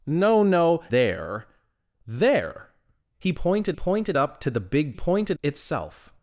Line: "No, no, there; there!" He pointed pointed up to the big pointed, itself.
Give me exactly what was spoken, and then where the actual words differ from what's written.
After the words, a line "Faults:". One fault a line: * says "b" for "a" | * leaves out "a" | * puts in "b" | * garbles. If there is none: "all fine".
"No, no, there; there!" He pointed pointed up to the big pointed, itself.
Faults:
all fine